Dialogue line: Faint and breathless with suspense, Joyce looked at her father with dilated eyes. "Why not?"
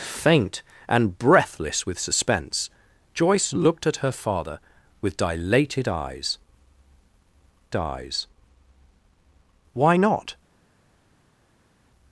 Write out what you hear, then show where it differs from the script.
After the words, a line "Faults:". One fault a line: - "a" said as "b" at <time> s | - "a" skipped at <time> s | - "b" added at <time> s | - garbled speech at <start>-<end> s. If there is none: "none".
Faint and breathless with suspense, Joyce looked at her father with dilated eyes eyes. "Why not?"
Faults:
- "eyes" added at 7.7 s